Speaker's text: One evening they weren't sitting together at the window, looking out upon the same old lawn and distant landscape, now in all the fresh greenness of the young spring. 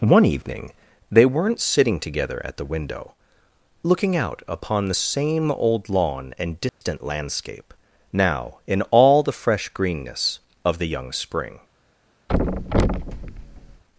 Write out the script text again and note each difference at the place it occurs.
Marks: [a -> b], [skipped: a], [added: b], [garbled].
One evening they weren't sitting together at the window, looking out upon the same old lawn and distant landscape, now in all the fresh greenness of the young spring.